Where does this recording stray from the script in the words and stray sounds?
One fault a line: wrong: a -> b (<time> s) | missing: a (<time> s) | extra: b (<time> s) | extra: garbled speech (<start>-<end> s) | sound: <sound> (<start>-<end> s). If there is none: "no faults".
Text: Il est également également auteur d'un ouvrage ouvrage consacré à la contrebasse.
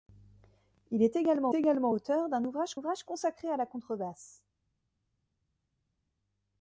no faults